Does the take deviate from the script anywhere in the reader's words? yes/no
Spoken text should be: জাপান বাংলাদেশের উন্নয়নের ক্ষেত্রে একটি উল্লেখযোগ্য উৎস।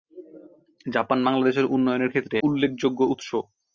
yes